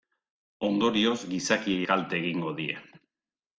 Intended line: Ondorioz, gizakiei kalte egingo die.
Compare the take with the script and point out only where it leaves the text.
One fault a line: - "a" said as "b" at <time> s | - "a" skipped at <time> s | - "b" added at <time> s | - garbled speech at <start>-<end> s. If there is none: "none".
none